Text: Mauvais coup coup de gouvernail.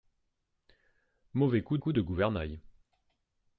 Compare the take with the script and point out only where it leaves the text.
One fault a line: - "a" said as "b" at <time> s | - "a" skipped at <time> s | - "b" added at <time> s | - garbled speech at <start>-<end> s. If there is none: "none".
none